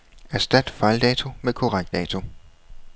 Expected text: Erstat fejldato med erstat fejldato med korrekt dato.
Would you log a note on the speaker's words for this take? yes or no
yes